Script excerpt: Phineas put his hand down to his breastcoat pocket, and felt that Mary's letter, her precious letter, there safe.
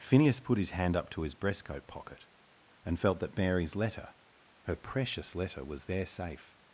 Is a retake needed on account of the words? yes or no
yes